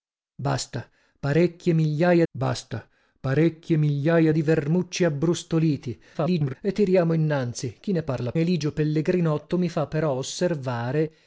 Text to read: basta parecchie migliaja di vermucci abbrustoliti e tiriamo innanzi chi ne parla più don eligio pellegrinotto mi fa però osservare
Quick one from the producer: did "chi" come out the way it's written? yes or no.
yes